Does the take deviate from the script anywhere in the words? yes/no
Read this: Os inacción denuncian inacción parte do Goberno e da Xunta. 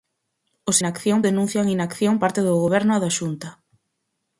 no